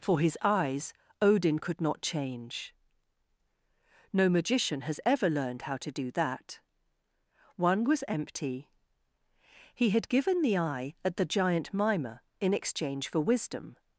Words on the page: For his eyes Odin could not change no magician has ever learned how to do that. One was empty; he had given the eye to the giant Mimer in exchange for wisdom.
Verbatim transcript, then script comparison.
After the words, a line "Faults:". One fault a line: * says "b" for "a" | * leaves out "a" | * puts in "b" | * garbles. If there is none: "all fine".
For his eyes Odin could not change no magician has ever learned how to do that. One was empty; he had given the eye at the giant Mimer in exchange for wisdom.
Faults:
* says "at" for "to"